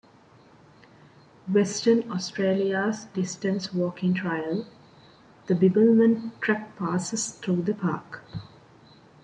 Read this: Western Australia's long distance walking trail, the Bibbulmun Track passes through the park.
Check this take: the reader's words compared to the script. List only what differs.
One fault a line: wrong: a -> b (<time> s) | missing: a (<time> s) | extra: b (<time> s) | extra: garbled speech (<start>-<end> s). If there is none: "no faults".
missing: long (3.0 s)